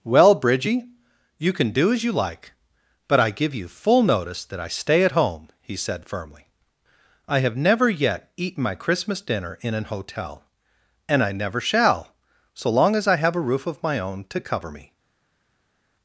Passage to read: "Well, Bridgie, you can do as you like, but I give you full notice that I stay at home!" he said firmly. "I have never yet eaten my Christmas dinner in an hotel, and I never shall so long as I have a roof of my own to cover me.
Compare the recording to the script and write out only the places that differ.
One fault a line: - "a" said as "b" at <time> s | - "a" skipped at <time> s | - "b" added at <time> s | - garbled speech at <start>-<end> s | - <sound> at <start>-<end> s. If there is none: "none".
none